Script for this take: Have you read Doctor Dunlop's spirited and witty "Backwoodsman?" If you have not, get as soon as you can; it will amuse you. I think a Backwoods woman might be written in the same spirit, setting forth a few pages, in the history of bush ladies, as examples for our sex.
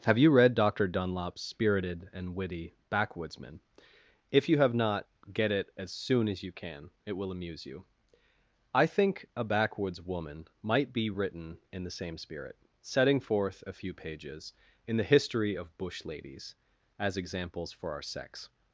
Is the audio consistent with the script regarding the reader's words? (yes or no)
no